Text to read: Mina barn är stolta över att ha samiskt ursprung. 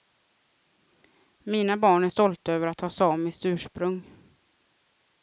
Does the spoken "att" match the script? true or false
true